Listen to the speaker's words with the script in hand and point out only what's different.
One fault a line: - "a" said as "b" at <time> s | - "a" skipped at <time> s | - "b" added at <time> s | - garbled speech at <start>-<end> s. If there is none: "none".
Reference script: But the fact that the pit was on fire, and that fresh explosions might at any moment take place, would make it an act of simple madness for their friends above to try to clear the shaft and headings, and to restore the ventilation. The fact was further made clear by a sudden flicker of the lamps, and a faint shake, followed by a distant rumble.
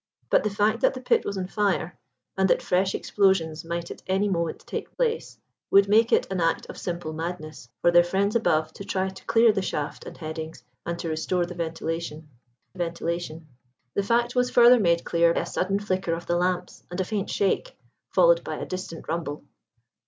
- "ventilation" added at 12.7 s
- "by" skipped at 15.3 s